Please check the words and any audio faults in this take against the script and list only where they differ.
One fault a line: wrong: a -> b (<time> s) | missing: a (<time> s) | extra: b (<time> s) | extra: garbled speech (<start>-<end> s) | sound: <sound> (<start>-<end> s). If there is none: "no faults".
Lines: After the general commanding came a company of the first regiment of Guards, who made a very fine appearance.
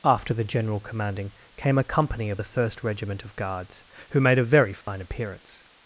sound: dropout (4.8-4.9 s)